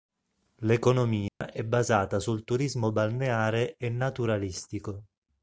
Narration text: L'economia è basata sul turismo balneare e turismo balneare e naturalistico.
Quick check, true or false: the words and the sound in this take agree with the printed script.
false